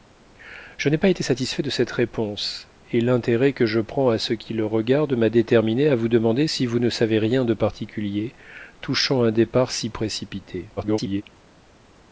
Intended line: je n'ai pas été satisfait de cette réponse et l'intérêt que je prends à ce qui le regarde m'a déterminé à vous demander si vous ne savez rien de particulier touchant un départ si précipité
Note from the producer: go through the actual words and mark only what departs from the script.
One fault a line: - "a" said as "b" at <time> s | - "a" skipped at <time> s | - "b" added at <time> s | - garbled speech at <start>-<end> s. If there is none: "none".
- garbled speech at 10.8-11.2 s